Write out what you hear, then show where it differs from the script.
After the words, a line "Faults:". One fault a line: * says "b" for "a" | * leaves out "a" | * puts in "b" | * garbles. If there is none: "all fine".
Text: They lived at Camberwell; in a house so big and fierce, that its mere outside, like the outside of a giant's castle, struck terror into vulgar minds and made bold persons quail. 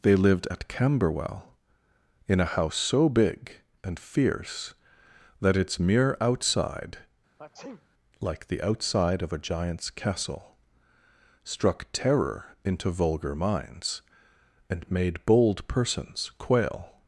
They lived at Camberwell; in a house so big and fierce, that its mere outside, like the outside of a giant's castle, struck terror into vulgar minds and made bold persons quail.
Faults:
all fine